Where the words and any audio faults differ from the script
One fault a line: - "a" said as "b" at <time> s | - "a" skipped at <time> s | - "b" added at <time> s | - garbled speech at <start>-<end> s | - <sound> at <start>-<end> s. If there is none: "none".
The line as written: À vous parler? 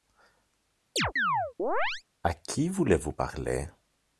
- chirp at 1.0-2.0 s
- "qui voulez" added at 2.3 s